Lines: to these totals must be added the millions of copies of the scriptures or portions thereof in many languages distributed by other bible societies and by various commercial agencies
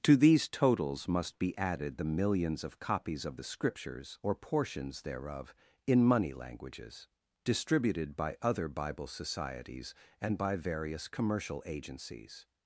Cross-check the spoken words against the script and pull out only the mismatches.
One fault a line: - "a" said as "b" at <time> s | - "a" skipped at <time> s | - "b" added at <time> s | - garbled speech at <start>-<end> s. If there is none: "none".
- "many" said as "money" at 6.0 s